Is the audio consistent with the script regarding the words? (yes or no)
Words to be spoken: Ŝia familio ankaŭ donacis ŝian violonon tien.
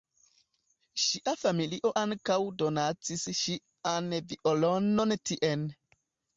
yes